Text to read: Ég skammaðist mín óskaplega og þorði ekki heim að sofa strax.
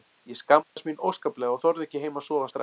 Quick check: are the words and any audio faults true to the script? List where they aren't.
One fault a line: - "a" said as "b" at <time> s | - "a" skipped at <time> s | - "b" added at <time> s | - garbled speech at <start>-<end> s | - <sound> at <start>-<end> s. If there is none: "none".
- dropout at 0.6-0.8 s